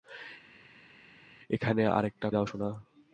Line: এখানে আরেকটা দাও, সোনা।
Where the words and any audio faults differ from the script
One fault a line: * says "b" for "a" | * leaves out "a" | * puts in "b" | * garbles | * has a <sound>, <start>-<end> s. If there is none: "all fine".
all fine